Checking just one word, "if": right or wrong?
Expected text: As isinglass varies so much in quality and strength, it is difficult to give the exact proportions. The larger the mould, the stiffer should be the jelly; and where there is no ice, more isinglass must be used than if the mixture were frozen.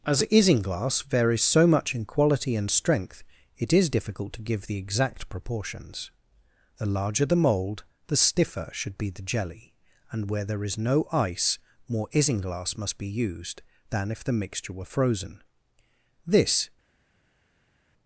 right